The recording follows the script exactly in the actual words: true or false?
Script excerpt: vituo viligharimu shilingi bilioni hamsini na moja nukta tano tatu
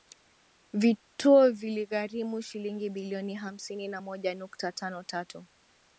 true